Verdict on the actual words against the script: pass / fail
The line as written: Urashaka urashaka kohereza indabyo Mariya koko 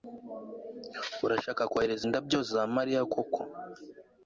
fail